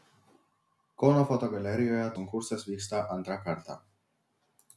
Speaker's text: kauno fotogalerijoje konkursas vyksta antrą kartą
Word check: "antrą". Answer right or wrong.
right